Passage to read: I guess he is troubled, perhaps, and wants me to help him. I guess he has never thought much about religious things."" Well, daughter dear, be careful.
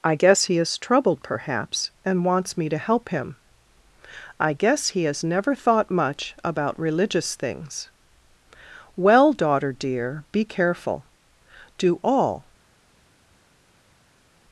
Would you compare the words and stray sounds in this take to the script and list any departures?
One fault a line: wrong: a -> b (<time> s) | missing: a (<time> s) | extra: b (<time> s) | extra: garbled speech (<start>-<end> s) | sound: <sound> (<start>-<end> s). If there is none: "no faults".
extra: Do all (11.8 s)